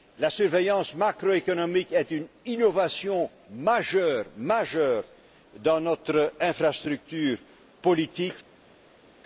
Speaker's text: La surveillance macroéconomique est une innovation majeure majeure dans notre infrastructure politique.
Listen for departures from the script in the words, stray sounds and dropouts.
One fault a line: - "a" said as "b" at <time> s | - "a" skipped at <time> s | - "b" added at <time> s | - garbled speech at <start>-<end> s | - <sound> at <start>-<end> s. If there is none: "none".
- "majeure" skipped at 4.3 s